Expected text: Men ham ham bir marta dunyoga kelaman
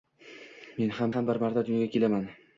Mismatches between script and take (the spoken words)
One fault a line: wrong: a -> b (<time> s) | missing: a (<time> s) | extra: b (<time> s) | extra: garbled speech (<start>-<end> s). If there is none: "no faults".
no faults